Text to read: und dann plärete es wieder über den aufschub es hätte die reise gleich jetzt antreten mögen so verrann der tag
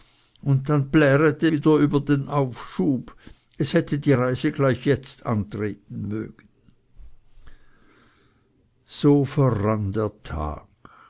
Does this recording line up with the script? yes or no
no